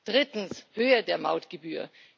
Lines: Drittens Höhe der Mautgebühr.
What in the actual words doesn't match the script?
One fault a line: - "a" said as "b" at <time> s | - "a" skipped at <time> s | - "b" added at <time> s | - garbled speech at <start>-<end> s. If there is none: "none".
none